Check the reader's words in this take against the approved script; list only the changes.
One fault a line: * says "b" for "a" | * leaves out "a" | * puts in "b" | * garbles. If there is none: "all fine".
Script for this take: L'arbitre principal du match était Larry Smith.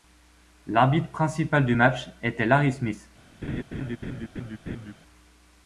all fine